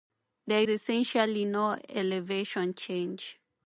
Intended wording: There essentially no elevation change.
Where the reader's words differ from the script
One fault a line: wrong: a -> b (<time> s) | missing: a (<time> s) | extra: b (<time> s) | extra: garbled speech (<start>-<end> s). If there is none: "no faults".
no faults